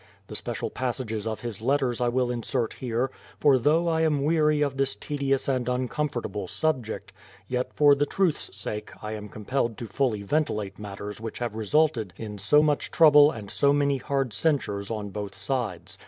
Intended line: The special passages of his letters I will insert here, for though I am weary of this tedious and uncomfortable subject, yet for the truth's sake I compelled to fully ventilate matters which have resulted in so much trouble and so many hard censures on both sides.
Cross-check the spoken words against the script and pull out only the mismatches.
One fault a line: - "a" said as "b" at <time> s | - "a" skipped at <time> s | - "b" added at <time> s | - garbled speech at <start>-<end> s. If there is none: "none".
- "am" added at 9.1 s